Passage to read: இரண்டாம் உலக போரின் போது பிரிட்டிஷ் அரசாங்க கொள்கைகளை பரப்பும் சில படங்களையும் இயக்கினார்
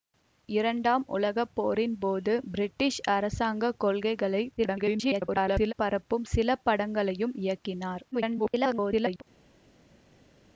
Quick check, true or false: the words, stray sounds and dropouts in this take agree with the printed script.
false